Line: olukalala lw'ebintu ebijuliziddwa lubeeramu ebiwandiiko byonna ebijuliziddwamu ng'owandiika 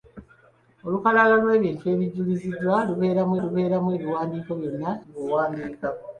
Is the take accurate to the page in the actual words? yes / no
no